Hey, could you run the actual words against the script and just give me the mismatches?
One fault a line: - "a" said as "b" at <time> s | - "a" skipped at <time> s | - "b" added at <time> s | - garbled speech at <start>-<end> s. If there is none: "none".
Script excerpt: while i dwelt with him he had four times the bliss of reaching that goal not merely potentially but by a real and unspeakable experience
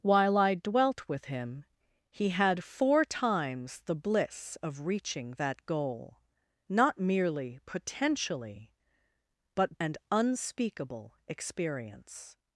- "by a real" skipped at 9.8 s